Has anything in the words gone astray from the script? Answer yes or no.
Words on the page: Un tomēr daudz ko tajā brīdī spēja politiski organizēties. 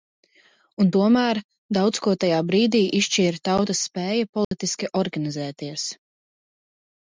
yes